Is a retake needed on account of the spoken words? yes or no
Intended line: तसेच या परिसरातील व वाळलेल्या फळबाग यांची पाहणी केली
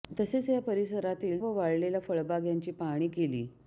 no